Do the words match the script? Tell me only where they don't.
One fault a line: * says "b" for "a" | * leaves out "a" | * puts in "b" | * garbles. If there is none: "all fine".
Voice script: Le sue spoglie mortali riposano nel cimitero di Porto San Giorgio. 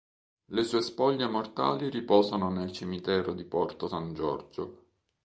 all fine